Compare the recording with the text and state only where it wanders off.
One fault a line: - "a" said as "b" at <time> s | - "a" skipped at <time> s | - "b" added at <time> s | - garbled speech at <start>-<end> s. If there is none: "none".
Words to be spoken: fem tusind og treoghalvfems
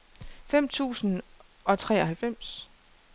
none